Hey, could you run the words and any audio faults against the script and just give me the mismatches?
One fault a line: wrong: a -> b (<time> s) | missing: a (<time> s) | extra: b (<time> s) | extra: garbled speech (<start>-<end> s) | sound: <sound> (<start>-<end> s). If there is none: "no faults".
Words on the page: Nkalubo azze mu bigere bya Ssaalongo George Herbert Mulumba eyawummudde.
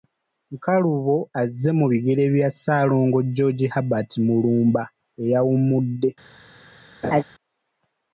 sound: laugh (7.0-7.2 s)